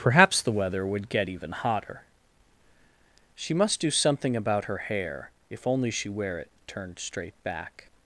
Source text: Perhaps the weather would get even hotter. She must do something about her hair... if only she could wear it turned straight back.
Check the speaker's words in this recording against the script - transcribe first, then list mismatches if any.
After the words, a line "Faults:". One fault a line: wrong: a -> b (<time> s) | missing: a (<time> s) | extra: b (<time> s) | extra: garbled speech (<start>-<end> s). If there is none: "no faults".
Perhaps the weather would get even hotter. She must do something about her hair... if only she wear it turned straight back.
Faults:
missing: could (6.1 s)